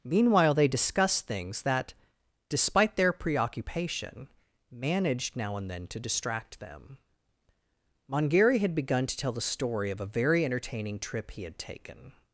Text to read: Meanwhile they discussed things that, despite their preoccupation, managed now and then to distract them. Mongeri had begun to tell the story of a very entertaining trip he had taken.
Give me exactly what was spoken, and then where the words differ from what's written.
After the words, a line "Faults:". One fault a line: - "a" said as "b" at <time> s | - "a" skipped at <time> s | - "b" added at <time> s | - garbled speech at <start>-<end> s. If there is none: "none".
Meanwhile they discussed things that, despite their preoccupation, managed now and then to distract them. Mongeri had begun to tell the story of a very entertaining trip he had taken.
Faults:
none